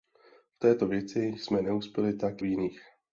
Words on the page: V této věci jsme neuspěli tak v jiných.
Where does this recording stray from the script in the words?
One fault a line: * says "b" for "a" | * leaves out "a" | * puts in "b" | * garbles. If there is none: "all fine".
all fine